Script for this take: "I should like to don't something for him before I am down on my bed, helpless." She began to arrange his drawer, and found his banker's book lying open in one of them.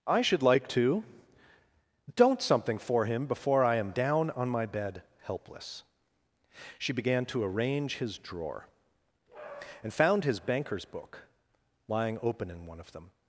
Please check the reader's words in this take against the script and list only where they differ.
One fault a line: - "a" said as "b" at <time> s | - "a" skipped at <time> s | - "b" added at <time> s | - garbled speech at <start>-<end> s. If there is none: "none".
none